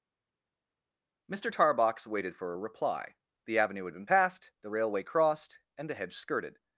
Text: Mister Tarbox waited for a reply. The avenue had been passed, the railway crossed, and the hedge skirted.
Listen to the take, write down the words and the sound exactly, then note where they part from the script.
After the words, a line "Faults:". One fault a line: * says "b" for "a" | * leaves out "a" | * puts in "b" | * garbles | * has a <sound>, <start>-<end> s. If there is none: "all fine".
Mister Tarbox waited for a reply. The avenue had been passed, the railway crossed, and the hedge skirted.
Faults:
all fine